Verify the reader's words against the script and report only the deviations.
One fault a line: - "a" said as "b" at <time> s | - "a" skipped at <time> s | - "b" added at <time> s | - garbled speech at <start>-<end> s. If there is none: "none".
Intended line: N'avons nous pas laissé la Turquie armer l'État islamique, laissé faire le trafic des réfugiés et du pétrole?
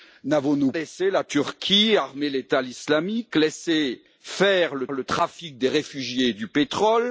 - "pas" skipped at 0.7 s
- "le" added at 4.9 s